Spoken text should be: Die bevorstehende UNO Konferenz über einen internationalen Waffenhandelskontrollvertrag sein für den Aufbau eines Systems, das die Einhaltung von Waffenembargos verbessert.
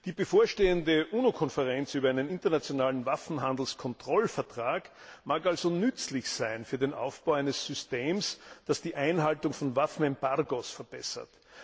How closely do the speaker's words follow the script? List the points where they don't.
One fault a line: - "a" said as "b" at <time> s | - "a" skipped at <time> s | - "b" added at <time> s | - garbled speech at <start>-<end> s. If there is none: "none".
- "mag also nützlich" added at 5.2 s